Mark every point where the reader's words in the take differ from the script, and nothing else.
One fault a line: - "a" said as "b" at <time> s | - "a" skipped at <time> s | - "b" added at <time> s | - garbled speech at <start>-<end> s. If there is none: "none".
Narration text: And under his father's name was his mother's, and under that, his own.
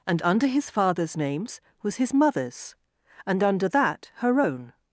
- "name" said as "names" at 1.1 s
- "his" said as "her" at 4.2 s